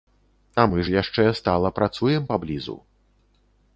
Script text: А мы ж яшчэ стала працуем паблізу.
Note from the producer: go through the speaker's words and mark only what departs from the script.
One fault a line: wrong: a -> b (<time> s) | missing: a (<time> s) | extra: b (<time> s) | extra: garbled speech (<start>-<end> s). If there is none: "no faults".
no faults